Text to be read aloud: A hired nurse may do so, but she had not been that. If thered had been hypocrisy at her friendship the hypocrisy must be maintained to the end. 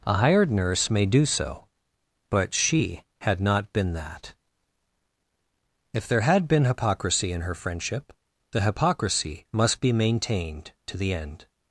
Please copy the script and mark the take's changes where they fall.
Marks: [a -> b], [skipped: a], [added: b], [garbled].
A hired nurse may do so, but she had not been that. If [thered -> there] had been hypocrisy [at -> in] her friendship the hypocrisy must be maintained to the end.